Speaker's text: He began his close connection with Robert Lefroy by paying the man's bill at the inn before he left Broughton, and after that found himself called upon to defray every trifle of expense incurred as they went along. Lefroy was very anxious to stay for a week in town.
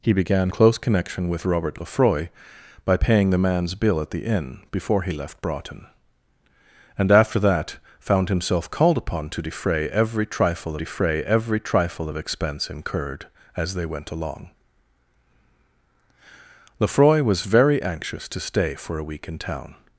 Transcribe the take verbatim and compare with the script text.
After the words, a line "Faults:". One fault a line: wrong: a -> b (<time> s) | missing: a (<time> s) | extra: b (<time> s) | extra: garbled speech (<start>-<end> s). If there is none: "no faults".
He began close connection with Robert Lefroy by paying the man's bill at the inn before he left Broughton, and after that found himself called upon to defray every trifle defray every trifle of expense incurred as they went along. Lefroy was very anxious to stay for a week in town.
Faults:
missing: his (0.5 s)
extra: defray every trifle (10.8 s)